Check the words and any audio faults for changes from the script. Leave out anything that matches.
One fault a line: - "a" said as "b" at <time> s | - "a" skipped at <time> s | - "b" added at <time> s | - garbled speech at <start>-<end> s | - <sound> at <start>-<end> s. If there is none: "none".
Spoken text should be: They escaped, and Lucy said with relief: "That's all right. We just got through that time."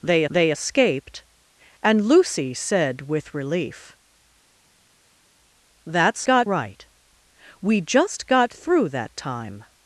- "they" added at 0.3 s
- "all" said as "got" at 6.2 s